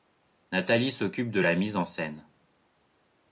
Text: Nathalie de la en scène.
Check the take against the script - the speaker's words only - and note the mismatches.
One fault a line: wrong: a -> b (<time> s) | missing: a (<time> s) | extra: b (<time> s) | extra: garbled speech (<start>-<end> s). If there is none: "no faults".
extra: s'occupe (0.9 s)
extra: mise (1.5 s)